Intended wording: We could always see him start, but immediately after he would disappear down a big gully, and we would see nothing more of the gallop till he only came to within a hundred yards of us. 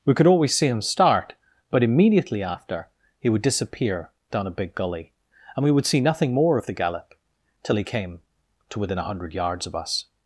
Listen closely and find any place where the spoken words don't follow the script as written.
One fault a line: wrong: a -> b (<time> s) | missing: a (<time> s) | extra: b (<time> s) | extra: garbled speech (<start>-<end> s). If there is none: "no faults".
missing: only (7.8 s)